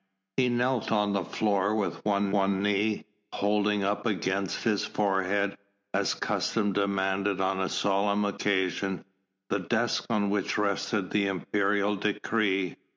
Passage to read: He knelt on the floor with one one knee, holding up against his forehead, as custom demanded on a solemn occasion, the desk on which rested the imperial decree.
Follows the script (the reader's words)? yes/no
yes